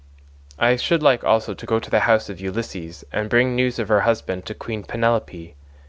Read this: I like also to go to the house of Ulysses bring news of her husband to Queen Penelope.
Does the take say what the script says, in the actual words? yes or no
no